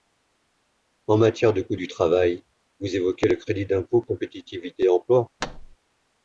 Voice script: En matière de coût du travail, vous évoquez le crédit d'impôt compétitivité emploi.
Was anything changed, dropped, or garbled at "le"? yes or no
no